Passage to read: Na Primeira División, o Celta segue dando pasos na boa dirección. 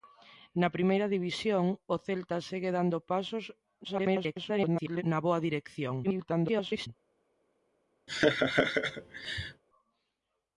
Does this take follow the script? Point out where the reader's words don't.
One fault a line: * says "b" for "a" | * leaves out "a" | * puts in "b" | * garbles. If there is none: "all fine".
* garbles
* garbles